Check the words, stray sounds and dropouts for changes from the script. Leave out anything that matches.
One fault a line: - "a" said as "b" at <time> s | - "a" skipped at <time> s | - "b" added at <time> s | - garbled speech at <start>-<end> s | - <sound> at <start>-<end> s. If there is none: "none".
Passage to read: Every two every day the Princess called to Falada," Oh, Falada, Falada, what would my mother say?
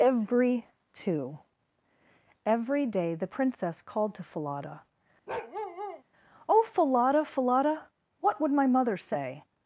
- bark at 5.3-6.0 s